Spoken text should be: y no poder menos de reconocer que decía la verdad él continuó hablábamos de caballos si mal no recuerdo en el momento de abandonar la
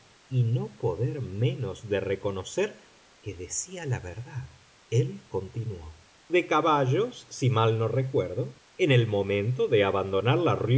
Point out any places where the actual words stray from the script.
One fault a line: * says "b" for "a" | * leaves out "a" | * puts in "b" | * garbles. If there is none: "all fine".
* leaves out "hablábamos"